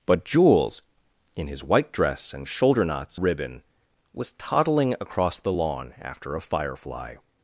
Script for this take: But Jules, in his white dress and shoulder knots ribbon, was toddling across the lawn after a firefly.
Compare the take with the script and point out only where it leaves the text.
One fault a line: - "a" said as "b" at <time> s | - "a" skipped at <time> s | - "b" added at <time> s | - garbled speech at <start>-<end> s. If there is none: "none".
none